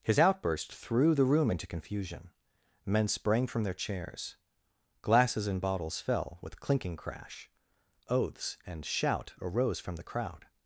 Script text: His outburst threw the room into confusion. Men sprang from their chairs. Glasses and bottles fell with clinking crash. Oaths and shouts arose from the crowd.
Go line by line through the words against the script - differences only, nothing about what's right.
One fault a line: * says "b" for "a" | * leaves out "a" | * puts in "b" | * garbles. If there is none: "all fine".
* says "shout" for "shouts"